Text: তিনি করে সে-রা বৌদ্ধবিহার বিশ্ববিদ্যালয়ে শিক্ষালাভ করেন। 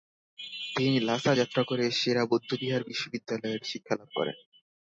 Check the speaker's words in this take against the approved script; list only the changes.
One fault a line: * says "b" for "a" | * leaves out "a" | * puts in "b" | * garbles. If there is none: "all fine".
* puts in "লাসা যাত্রা"